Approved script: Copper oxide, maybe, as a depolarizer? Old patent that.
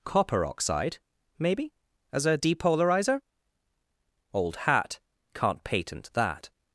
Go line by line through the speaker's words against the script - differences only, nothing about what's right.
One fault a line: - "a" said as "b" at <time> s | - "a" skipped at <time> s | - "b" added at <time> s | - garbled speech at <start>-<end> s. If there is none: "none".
- "hat can't" added at 4.6 s